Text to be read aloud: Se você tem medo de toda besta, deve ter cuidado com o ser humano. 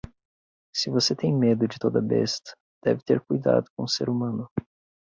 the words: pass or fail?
pass